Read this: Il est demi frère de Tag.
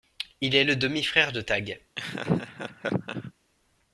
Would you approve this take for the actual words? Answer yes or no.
no